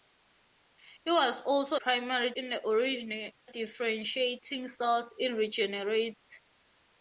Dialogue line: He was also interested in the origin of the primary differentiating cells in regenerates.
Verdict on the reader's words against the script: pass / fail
fail